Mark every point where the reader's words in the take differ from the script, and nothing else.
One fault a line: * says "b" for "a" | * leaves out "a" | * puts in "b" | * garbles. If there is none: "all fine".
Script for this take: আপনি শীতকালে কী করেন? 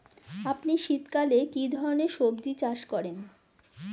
* puts in "ধরনের সবজী চাষ"